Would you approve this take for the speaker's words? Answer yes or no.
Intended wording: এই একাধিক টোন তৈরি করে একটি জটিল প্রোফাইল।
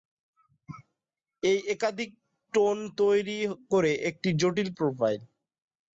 yes